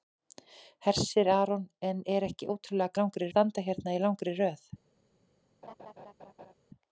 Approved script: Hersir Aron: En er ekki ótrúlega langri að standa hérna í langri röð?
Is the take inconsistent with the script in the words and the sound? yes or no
yes